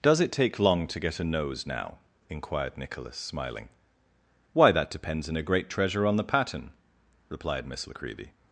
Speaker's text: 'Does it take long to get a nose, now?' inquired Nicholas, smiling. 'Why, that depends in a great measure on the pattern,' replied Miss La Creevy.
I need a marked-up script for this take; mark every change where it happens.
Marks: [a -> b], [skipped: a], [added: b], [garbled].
'Does it take long to get a nose, now?' inquired Nicholas, smiling. 'Why, that depends in a great [measure -> treasure] on the pattern,' replied Miss La Creevy.